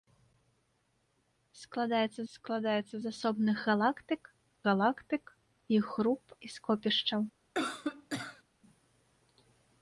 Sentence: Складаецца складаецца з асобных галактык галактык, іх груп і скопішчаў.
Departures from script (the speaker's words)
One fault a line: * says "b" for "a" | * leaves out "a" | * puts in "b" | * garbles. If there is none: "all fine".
all fine